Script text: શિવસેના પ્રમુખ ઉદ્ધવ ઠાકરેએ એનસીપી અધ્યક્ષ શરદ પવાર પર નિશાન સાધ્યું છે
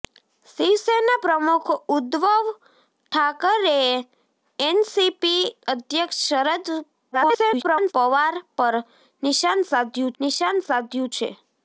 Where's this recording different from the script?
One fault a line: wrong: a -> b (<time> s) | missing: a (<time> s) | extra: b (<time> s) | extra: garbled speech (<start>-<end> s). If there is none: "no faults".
extra: garbled speech (7.1-7.9 s)
extra: નિશાન સાધ્યું (10.2 s)